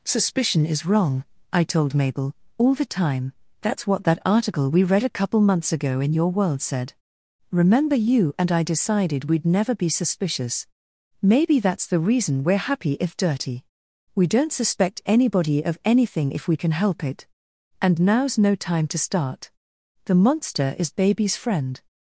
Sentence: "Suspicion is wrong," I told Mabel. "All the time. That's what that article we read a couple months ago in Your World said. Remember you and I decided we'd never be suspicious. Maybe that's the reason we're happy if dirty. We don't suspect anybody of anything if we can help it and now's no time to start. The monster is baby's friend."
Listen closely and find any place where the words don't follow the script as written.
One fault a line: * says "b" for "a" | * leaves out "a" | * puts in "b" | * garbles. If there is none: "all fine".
all fine